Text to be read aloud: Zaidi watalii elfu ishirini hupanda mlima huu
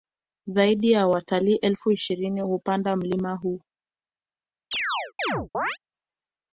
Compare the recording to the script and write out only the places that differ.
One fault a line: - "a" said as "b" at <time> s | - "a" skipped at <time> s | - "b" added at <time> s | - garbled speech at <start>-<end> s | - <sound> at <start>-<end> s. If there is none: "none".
- "ya" added at 0.9 s
- chirp at 4.7-5.8 s